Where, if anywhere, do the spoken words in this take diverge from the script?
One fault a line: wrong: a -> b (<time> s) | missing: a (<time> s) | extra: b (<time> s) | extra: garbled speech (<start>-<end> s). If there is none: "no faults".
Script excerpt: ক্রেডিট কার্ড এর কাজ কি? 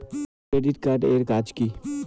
no faults